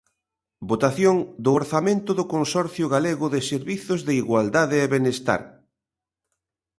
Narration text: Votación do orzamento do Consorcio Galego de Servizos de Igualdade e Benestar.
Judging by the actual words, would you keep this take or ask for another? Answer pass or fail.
pass